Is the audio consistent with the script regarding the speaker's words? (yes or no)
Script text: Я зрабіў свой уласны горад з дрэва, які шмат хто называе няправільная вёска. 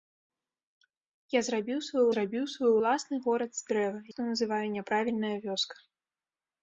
no